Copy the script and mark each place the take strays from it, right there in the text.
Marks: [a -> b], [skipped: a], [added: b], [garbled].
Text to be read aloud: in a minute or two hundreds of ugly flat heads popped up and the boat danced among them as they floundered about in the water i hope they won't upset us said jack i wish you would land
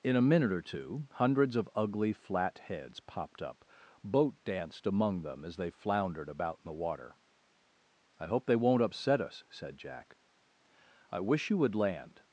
in a minute or two hundreds of ugly flat heads popped up [skipped: and the] boat danced among them as they floundered about in the water i hope they won't upset us said jack i wish you would land